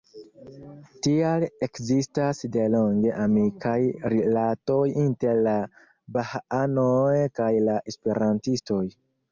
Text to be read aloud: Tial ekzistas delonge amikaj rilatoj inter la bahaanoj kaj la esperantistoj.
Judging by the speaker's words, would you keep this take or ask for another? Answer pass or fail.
pass